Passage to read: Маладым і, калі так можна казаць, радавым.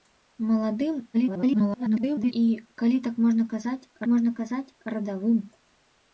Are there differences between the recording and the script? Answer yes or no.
yes